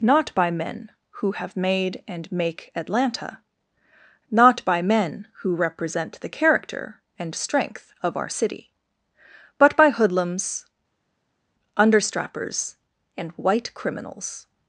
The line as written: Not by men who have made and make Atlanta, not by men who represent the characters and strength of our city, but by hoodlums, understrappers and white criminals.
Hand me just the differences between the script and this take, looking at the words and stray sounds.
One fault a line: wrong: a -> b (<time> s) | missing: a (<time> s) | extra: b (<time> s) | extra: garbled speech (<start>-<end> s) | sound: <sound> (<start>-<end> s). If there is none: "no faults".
wrong: characters -> character (6.3 s)